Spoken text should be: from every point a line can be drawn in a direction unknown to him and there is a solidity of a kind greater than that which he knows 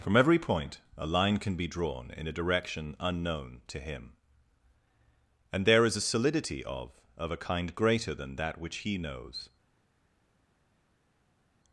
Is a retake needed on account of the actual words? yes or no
yes